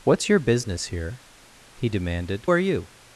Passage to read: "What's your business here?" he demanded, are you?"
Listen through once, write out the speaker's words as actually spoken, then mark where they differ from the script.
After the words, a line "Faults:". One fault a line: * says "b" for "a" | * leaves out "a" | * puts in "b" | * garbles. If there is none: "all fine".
"What's your business here?" he demanded, are you?"
Faults:
all fine